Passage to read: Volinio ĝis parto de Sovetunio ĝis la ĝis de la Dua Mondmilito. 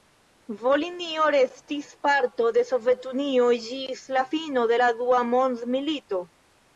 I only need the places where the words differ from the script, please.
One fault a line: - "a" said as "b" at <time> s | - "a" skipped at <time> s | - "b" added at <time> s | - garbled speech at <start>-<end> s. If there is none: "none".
- "ĝis" said as "restis" at 1.4 s
- "ĝis" said as "fino" at 4.3 s